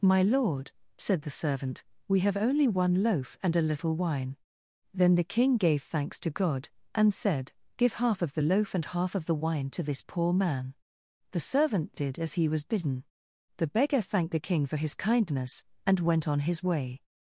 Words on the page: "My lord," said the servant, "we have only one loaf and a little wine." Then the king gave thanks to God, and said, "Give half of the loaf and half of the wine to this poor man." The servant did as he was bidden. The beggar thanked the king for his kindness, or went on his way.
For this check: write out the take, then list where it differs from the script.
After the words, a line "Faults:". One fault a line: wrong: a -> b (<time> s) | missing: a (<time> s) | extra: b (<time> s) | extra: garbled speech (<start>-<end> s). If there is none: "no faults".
"My lord," said the servant, "we have only one loaf and a little wine." Then the king gave thanks to God, and said, "Give half of the loaf and half of the wine to this poor man." The servant did as he was bidden. The beggar thanked the king for his kindness, and went on his way.
Faults:
wrong: or -> and (15.8 s)